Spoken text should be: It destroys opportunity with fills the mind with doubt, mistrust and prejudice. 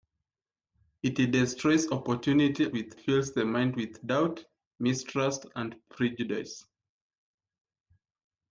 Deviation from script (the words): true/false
false